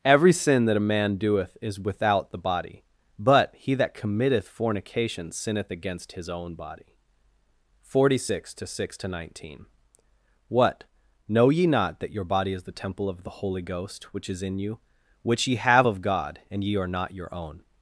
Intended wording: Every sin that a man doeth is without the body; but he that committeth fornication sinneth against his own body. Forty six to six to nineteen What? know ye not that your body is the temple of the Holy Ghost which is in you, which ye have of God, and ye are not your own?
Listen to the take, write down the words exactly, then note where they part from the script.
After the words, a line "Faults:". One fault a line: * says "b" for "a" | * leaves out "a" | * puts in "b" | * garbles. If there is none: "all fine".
Every sin that a man doeth is without the body; but he that committeth fornication sinneth against his own body. Forty six to six to nineteen What? know ye not that your body is the temple of the Holy Ghost which is in you, which ye have of God, and ye are not your own?
Faults:
all fine